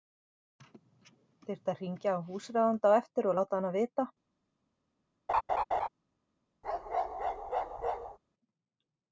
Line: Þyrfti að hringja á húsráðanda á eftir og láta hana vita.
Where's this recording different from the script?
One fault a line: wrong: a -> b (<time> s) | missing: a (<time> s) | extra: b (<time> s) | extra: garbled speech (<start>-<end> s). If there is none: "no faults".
no faults